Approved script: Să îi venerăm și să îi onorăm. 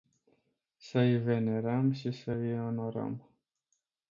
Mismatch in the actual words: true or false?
false